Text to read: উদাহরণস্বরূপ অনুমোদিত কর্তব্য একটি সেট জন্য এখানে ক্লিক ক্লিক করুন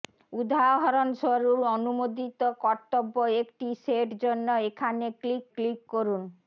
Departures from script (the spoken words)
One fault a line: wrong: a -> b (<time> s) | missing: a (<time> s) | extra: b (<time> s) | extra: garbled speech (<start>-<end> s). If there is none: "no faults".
no faults